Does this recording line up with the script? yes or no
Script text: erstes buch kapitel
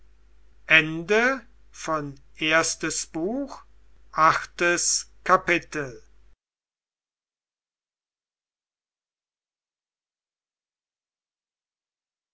no